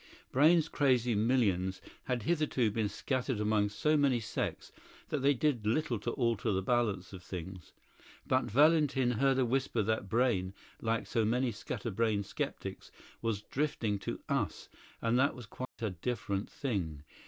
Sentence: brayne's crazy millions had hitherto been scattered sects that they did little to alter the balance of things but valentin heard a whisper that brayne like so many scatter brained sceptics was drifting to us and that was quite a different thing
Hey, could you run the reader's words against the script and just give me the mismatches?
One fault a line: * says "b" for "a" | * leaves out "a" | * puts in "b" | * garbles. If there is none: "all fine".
* puts in "among so many"